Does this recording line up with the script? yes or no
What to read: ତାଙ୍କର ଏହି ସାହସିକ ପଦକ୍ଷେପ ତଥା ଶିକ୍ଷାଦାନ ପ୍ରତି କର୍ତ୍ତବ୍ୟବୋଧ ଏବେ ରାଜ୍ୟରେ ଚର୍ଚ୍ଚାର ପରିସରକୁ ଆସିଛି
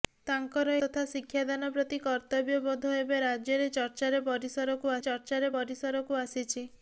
no